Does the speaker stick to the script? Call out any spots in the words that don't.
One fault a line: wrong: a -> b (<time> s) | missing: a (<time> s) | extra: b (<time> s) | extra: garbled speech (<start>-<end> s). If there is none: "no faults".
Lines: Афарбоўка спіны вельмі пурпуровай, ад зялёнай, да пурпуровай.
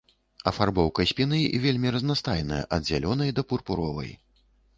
wrong: пурпуровай -> разнастайная (2.0 s)